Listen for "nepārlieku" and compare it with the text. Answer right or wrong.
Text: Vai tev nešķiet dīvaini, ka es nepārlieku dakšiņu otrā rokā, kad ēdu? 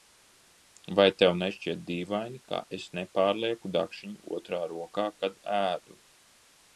right